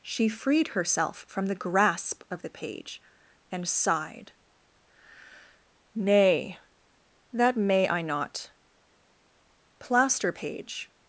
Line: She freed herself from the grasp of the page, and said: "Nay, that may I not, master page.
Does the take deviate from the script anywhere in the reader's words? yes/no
yes